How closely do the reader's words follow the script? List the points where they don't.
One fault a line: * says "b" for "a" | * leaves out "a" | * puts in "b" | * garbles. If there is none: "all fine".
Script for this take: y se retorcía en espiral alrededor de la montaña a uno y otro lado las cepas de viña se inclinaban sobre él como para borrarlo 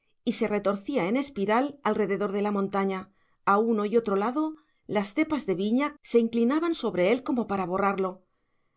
all fine